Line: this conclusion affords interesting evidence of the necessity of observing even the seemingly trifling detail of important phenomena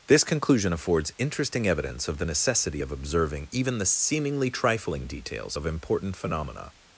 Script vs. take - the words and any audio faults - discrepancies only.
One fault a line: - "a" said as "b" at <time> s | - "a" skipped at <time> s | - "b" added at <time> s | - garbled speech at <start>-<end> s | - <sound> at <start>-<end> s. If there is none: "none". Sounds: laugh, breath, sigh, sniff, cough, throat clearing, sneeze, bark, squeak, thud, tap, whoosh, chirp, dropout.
- "detail" said as "details" at 5.1 s